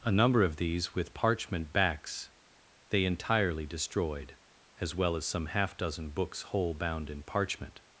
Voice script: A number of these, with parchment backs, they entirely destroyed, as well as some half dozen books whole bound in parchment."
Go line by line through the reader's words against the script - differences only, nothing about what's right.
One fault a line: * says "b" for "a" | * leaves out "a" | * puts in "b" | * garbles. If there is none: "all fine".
all fine